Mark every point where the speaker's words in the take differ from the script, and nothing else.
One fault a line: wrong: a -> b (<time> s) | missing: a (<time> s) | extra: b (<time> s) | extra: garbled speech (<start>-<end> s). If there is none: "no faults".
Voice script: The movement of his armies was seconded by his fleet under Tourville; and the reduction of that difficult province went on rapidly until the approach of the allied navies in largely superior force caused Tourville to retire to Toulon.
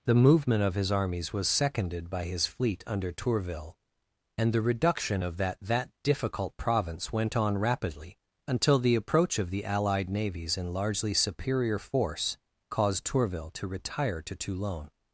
extra: that (5.6 s)